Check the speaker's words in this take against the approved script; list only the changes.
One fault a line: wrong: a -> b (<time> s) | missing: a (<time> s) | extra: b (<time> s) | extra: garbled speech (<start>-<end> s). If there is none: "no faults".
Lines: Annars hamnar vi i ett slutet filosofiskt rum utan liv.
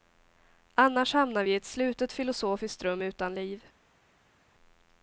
no faults